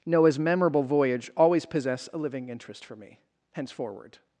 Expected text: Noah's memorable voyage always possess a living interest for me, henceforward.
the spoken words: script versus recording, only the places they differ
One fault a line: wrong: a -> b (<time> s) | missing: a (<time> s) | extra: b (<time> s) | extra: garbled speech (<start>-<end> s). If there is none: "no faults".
no faults